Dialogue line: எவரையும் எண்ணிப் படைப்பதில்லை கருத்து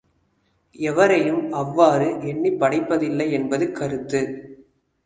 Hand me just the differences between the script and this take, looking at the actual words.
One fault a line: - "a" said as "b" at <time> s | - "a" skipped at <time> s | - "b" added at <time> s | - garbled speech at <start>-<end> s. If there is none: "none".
- "அவ்வாறு" added at 1.5 s
- "என்பது" added at 3.3 s